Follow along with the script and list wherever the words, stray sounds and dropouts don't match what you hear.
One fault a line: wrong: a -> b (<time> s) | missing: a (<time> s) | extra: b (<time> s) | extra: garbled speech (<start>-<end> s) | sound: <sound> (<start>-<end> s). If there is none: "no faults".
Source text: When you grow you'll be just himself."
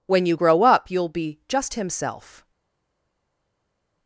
extra: up (0.6 s)